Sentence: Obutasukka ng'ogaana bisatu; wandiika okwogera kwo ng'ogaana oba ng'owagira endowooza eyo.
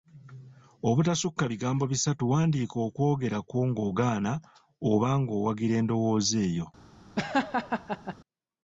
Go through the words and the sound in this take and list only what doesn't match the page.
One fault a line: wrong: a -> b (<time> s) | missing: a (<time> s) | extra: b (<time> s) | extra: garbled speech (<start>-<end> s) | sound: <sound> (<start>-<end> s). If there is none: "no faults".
wrong: ng'ogaana -> bigambo (1.5 s)
sound: laugh (7.2-8.2 s)